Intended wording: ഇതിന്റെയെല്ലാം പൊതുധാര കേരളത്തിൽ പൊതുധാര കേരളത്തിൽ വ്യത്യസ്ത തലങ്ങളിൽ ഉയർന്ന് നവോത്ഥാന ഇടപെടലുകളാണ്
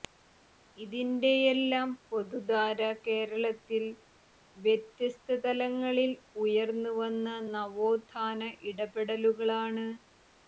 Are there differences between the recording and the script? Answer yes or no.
yes